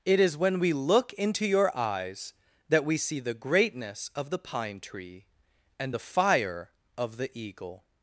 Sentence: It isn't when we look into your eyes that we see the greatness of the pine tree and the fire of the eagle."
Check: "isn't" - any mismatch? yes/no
yes